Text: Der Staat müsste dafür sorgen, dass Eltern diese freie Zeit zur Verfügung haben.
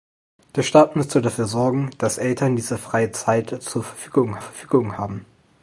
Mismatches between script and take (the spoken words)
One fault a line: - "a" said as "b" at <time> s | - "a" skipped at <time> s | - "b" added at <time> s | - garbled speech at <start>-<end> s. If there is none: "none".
- "Verfügung" added at 4.4 s